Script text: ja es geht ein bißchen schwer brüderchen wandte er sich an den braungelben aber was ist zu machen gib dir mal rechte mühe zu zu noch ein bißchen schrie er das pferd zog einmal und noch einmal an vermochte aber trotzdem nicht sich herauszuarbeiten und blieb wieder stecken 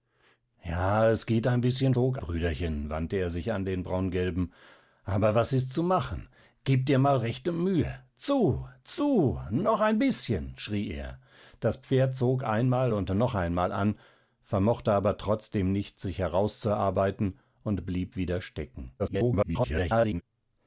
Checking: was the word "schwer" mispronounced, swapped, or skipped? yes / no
yes